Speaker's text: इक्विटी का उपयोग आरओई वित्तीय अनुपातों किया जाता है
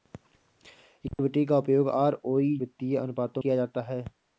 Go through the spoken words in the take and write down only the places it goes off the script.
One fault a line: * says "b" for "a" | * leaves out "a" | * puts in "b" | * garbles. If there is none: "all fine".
all fine